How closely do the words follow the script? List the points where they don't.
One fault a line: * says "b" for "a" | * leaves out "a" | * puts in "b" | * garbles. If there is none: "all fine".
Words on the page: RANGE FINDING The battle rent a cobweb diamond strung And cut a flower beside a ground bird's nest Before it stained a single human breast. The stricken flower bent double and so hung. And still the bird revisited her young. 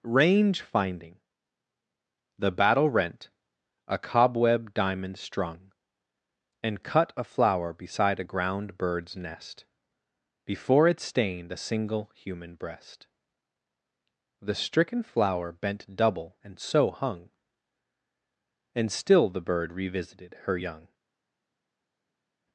all fine